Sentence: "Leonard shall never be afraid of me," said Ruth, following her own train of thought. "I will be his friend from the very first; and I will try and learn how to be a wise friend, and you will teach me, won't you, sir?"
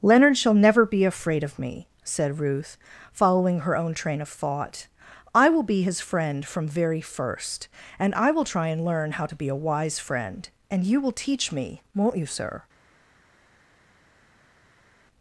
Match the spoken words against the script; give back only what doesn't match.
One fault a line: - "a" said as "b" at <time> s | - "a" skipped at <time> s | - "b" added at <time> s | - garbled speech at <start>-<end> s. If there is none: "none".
- "the" skipped at 6.7 s